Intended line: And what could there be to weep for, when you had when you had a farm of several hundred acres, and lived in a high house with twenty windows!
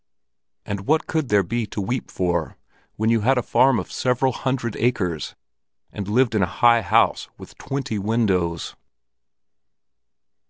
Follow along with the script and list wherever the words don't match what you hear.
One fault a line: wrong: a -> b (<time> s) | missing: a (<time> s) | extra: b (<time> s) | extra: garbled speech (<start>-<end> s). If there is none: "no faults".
missing: when you had (3.4 s)